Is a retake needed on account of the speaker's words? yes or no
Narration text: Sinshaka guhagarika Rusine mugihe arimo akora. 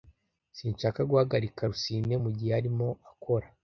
no